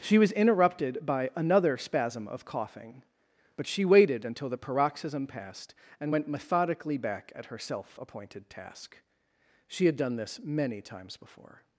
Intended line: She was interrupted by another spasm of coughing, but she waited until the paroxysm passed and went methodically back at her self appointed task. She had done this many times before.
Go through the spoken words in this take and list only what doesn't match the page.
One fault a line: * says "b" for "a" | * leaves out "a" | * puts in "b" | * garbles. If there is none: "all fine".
all fine